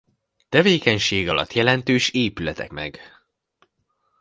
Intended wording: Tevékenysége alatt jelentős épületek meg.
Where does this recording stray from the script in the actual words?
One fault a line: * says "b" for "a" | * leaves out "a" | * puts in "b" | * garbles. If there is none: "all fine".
all fine